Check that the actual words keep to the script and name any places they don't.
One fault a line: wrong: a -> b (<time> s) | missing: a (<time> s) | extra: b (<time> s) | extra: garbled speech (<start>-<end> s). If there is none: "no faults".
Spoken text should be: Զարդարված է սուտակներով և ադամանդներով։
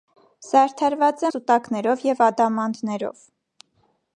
no faults